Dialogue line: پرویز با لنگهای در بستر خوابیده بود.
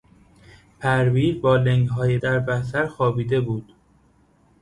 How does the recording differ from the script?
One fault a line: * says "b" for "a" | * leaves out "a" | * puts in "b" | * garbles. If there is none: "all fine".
all fine